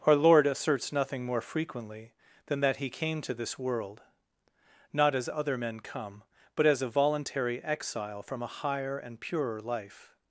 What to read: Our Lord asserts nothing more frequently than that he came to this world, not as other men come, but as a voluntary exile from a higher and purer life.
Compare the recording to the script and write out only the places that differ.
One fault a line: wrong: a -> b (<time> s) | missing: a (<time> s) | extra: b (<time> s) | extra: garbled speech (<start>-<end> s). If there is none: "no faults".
no faults